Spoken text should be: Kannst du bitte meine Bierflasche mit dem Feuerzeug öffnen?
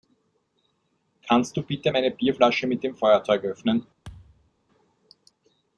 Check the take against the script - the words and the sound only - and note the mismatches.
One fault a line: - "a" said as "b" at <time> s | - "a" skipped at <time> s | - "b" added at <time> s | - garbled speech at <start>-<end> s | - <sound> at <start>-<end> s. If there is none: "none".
- thud at 4.0-4.5 s